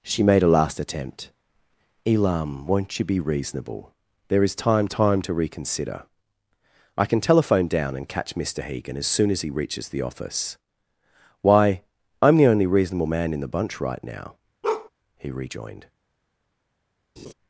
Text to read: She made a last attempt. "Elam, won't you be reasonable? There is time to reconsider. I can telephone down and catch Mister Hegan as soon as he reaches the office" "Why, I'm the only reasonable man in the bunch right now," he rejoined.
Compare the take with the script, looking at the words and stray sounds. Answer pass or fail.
fail